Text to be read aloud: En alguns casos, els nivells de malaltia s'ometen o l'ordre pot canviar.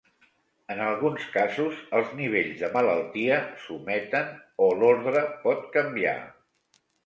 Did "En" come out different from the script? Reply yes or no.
no